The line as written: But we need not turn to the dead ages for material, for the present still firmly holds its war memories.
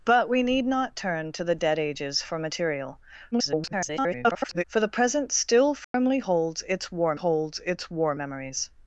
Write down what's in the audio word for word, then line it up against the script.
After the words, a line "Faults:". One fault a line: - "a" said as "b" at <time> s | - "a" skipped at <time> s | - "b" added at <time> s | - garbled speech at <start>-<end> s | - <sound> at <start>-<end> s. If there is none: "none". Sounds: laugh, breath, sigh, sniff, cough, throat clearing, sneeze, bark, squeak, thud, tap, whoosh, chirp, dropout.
But we need not turn to the dead ages for material, [garbled] for the present still firmly holds its war holds its war memories.
Faults:
- garbled speech at 3.3-4.6 s
- dropout at 5.8-5.9 s
- "holds its war" added at 7.1 s